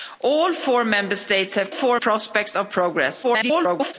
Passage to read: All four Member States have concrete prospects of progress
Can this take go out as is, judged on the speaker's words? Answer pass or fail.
fail